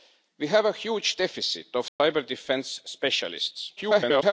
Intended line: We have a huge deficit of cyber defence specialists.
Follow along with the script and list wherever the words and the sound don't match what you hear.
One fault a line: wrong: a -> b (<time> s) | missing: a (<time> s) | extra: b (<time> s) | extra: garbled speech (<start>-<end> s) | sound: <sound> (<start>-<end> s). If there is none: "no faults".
sound: dropout (1.9-2.0 s)
extra: garbled speech (3.8-4.3 s)